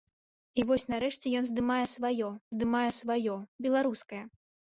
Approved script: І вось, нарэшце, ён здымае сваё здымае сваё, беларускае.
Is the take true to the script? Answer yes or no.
yes